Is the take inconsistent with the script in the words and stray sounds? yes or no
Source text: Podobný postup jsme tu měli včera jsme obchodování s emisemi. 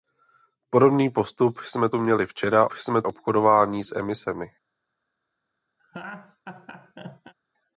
yes